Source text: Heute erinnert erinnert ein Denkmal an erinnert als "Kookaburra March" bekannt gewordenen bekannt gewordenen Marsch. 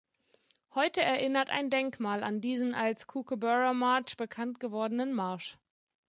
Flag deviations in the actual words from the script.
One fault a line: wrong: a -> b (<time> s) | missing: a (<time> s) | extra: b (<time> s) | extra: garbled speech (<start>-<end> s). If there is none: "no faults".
missing: erinnert (1.5 s)
wrong: erinnert -> diesen (2.4 s)
missing: bekannt gewordenen (5.1 s)